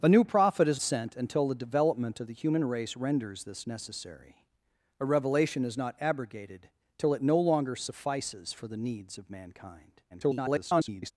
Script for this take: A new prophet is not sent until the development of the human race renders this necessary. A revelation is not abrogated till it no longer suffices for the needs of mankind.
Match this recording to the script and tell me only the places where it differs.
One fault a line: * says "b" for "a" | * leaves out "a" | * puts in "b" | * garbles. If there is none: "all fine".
* leaves out "not"
* garbles